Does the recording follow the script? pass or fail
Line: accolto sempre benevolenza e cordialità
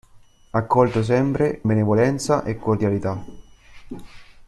pass